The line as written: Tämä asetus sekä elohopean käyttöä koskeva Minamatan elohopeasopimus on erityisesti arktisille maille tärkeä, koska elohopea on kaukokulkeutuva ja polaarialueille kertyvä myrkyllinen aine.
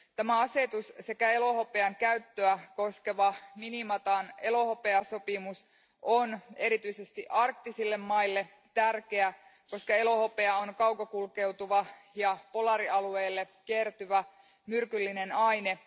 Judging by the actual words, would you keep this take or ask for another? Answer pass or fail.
pass